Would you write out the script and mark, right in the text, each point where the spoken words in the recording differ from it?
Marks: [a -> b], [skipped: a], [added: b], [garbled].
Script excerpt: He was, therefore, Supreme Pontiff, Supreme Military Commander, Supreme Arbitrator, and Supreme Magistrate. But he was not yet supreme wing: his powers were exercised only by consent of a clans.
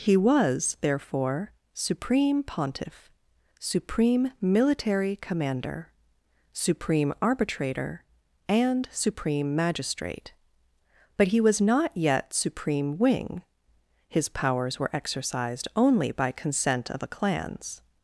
He was, therefore, Supreme Pontiff, Supreme Military Commander, Supreme Arbitrator, and Supreme Magistrate. But he was not yet supreme wing: his powers were exercised only by consent of a clans.